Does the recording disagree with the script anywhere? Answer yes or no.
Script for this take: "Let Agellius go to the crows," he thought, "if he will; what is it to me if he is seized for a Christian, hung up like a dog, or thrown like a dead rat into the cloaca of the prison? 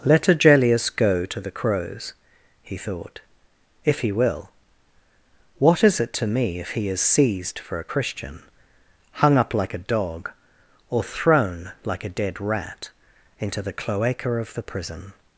no